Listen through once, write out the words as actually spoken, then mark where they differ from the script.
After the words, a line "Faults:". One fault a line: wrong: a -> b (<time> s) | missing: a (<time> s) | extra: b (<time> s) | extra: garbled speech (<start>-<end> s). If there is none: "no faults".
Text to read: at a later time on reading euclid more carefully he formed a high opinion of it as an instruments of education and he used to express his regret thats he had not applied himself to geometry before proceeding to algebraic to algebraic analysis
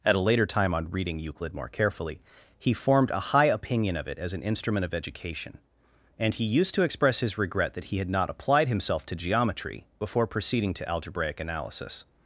at a later time on reading euclid more carefully he formed a high opinion of it as an instrument of education and he used to express his regret that he had not applied himself to geometry before proceeding to algebraic analysis
Faults:
wrong: instruments -> instrument (4.4 s)
wrong: thats -> that (7.7 s)
missing: to algebraic (11.4 s)